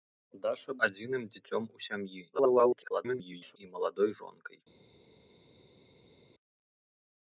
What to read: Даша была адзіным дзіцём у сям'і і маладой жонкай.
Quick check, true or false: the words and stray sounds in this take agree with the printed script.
false